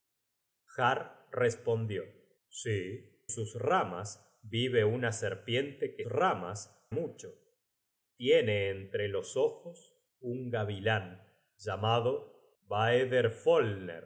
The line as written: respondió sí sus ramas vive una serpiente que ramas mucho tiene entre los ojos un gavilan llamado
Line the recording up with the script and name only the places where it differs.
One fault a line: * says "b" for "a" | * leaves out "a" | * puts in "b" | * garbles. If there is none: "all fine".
all fine